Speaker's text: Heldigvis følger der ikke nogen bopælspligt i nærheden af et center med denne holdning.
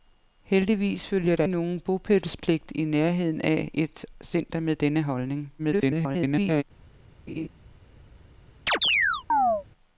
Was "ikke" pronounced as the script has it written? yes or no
no